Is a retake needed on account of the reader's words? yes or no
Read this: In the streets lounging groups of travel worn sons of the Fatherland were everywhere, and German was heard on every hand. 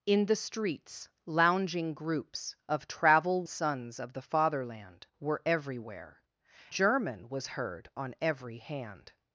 yes